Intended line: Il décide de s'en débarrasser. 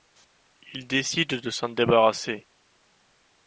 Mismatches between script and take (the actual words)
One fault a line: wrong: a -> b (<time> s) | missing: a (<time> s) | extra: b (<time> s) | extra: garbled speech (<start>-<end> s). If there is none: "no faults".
no faults